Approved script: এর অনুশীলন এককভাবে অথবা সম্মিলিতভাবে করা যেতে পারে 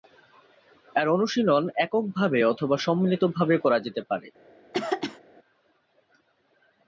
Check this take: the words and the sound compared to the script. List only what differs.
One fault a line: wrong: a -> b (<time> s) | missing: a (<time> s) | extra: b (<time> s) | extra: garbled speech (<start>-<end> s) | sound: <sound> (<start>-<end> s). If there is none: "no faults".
sound: throat clearing (4.7-5.2 s)